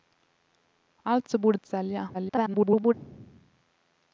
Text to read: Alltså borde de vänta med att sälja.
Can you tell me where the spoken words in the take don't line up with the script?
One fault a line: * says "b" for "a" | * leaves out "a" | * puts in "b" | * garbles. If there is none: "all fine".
* leaves out "de vänta med"
* garbles